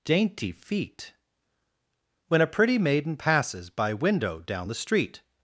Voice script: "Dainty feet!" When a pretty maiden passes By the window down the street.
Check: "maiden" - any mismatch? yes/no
no